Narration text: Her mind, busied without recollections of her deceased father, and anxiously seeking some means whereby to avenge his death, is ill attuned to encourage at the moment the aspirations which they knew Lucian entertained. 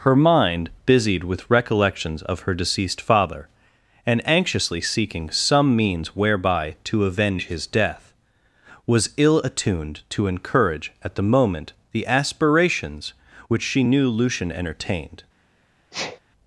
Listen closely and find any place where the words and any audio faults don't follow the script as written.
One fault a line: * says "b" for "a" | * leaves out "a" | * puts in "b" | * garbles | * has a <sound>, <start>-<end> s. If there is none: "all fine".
* says "with" for "without"
* says "was" for "is"
* says "she" for "they"
* has a sneeze, 15.9-16.2 s